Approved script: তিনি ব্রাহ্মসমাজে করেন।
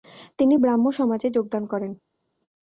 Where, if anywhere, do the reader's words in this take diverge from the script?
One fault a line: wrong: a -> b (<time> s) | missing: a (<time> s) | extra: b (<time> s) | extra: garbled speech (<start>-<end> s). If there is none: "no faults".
extra: যোগদান (1.4 s)